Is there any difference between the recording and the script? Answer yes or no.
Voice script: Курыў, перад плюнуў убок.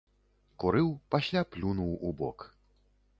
yes